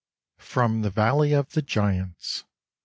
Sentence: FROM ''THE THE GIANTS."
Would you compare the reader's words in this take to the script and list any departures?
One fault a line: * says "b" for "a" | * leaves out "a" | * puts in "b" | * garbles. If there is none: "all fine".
* puts in "VALLEY OF"